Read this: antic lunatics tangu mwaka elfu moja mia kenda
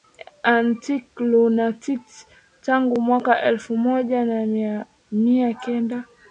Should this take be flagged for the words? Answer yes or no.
no